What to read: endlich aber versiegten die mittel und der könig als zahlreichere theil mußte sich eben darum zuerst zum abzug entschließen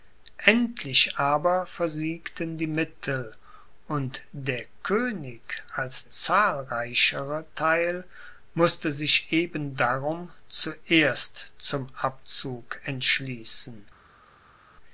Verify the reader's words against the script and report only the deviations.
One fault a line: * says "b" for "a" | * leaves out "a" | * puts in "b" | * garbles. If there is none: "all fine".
all fine